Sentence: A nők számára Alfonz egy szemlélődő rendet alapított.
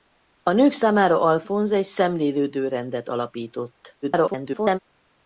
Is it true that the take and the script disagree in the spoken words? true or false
true